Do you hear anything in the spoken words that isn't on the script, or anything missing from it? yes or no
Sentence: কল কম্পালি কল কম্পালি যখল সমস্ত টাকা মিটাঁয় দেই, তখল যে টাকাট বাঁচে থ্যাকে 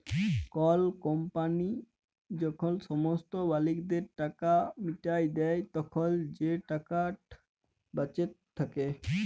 yes